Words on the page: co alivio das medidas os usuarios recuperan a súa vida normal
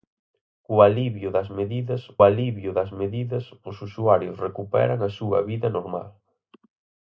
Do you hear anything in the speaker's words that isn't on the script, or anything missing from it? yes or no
yes